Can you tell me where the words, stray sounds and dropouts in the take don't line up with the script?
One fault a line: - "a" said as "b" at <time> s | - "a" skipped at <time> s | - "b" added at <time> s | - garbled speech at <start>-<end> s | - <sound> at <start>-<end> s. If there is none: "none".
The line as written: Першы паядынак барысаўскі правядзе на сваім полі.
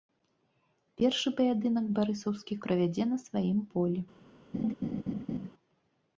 - laugh at 4.5-5.5 s